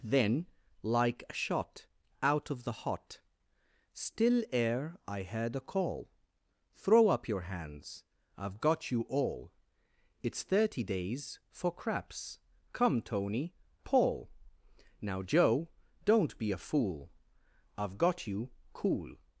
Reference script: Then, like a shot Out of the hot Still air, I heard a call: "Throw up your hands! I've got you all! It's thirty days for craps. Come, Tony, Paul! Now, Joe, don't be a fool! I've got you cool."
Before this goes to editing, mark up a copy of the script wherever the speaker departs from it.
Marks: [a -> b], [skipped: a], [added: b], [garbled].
Then, like a shot Out of the hot Still air, I heard a call: "Throw up your hands! I've got you all! It's thirty days for craps. Come, Tony, Paul! Now, Joe, don't be a fool! I've got you cool."